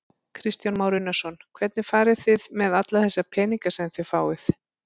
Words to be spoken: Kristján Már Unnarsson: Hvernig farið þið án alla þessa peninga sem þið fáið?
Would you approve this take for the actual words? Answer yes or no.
no